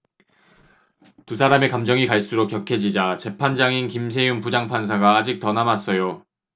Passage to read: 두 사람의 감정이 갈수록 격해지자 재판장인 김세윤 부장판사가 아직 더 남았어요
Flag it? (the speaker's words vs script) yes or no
no